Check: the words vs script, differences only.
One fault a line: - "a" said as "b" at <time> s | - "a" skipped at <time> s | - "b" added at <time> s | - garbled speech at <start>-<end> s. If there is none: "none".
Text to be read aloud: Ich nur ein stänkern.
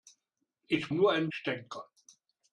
none